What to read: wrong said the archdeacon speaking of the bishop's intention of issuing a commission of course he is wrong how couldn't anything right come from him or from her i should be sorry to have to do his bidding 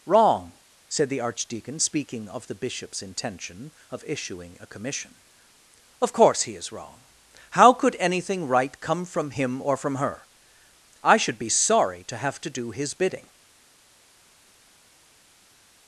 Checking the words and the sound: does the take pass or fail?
fail